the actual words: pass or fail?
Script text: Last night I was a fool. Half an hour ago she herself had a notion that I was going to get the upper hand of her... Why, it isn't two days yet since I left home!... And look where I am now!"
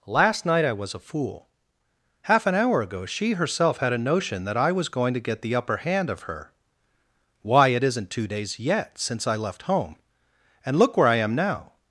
pass